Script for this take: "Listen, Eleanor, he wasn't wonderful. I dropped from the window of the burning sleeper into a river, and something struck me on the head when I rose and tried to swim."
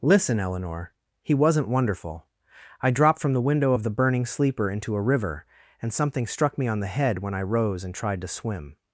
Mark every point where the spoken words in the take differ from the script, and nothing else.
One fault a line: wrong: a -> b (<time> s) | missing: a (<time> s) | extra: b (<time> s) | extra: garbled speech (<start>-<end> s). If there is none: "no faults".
no faults